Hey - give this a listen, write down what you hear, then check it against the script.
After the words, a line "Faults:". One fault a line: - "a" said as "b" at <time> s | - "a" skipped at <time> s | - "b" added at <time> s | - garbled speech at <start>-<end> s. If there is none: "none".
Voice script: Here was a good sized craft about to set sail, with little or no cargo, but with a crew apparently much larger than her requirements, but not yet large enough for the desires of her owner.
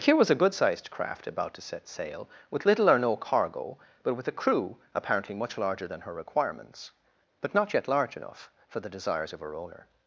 Here was a good sized craft about to set sail, with little or no cargo, but with a crew apparently much larger than her requirements, but not yet large enough for the desires of her owner.
Faults:
none